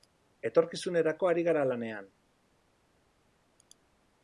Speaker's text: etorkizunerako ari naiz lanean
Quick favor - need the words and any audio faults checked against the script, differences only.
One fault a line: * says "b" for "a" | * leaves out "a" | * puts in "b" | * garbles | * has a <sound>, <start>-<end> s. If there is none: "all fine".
* says "gara" for "naiz"